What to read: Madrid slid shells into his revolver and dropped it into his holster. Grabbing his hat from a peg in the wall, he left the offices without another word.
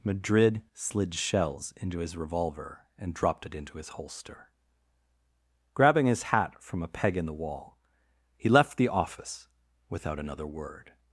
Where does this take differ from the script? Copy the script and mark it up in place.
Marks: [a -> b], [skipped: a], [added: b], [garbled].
Madrid slid shells into his revolver and dropped it into his holster. Grabbing his hat from a peg in the wall, he left the [offices -> office] without another word.